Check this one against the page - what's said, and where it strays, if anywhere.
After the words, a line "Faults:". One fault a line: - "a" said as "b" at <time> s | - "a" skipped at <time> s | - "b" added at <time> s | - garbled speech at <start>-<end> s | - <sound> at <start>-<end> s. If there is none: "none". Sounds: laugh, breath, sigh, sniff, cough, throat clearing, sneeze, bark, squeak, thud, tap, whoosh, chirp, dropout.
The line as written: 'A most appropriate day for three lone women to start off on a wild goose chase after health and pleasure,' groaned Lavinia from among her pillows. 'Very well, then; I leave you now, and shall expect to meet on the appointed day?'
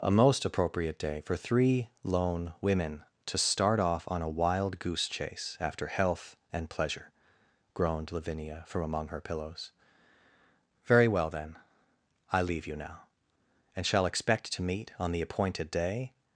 'A most appropriate day for three lone women to start off on a wild goose chase after health and pleasure,' groaned Lavinia from among her pillows. 'Very well, then; I leave you now, and shall expect to meet on the appointed day?'
Faults:
none